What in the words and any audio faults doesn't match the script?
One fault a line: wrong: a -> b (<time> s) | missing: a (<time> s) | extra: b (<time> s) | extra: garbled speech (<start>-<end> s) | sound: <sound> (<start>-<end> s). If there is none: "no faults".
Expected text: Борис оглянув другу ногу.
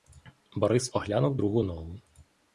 no faults